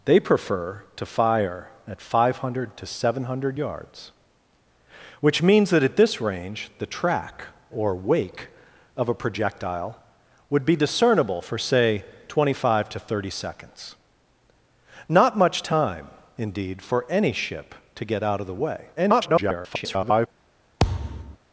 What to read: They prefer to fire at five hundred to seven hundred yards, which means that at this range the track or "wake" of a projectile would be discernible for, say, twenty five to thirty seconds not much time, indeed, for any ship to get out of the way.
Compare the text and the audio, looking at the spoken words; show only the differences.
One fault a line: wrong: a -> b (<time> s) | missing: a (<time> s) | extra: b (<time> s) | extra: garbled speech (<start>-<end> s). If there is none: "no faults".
extra: garbled speech (19.0-20.3 s)